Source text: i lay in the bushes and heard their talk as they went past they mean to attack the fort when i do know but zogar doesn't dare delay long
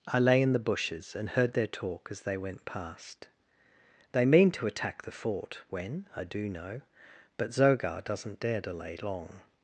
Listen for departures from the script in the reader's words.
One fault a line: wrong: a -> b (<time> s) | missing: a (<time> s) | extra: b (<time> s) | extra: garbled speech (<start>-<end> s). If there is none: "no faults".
no faults